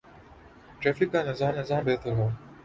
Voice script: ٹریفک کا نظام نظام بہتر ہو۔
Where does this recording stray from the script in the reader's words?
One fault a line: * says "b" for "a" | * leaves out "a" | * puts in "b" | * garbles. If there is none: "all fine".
all fine